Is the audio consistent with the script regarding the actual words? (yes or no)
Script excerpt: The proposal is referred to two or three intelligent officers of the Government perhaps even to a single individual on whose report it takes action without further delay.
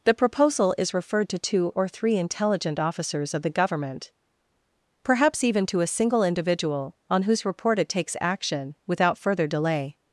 yes